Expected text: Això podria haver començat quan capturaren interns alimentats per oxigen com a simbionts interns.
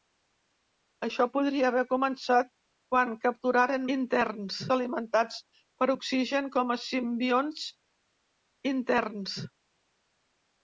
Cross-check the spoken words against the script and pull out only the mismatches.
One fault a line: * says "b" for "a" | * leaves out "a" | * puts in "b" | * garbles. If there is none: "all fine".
all fine